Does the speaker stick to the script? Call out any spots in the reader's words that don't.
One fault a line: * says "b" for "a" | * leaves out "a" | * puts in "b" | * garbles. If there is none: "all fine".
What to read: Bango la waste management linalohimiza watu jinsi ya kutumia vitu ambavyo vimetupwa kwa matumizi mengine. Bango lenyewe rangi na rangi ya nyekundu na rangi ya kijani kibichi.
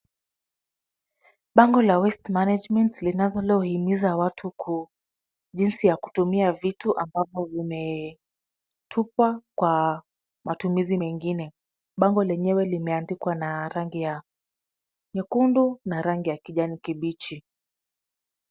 * says "limeandikwa" for "rangi"